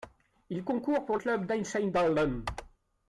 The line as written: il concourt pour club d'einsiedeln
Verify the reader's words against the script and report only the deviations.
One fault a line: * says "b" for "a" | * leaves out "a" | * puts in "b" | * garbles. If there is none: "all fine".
all fine